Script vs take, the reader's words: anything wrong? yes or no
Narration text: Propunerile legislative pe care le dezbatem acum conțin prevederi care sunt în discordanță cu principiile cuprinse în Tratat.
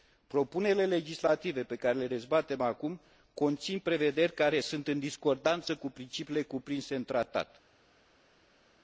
no